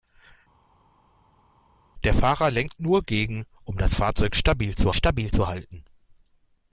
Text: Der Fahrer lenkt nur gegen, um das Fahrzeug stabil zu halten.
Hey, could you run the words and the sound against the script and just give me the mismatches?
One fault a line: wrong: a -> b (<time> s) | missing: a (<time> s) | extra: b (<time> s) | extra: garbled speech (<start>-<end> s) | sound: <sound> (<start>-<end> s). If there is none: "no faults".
extra: stabil zu (4.9 s)